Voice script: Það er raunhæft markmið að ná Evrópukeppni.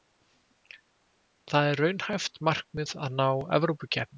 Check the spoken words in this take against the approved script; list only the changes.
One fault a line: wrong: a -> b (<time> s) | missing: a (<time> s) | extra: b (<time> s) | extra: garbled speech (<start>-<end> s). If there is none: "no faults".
no faults